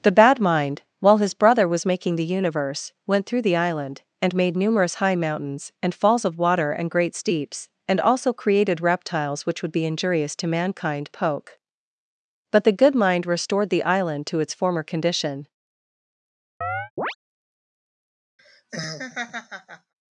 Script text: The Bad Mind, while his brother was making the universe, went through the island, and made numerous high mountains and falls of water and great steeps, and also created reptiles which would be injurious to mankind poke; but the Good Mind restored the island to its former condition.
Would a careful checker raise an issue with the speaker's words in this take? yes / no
no